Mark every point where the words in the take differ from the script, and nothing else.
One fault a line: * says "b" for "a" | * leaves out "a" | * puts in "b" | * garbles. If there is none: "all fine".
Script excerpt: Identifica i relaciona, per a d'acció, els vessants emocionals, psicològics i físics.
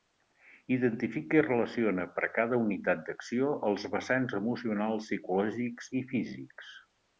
* puts in "cada unitat"